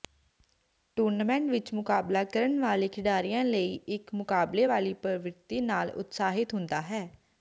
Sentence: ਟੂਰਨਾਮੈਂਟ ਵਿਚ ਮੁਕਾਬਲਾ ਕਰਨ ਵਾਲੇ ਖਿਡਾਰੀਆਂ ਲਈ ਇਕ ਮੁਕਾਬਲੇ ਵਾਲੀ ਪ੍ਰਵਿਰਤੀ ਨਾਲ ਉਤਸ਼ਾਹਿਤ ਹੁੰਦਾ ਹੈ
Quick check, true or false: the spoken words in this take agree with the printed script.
true